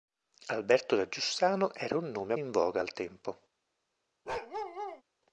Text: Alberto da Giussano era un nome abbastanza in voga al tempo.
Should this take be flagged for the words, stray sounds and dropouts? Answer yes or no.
yes